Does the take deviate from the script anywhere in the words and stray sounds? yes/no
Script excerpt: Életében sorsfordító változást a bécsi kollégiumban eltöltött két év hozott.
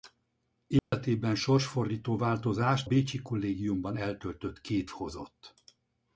yes